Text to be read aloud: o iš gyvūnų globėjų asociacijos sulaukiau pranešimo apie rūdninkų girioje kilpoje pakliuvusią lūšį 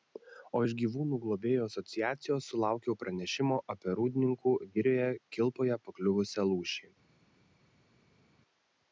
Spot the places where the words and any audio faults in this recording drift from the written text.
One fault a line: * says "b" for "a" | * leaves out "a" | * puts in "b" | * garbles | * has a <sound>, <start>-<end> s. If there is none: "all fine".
all fine